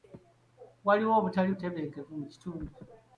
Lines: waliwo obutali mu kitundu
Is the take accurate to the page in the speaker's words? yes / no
no